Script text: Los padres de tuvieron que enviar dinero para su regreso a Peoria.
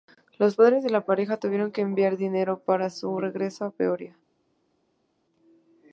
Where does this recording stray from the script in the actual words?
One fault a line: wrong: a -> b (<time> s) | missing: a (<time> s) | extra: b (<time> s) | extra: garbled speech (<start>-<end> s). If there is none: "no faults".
extra: la pareja (0.9 s)